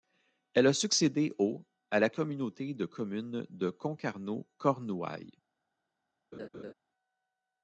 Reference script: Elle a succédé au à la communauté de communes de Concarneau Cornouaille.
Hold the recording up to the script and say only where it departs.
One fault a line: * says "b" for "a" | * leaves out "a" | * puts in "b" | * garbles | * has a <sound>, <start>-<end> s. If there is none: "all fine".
* has a laugh, 6.3-6.7 s